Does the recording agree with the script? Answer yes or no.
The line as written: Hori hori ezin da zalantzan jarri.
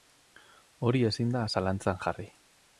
no